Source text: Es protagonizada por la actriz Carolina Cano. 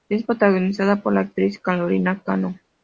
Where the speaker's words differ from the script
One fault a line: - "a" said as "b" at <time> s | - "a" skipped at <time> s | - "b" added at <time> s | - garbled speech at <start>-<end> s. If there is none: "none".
none